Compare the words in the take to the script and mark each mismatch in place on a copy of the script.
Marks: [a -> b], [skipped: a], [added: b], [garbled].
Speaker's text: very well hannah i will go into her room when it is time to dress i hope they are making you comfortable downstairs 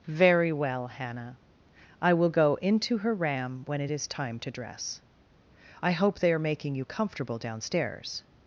very well hannah i will go into her [room -> ram] when it is time to dress i hope they are making you comfortable downstairs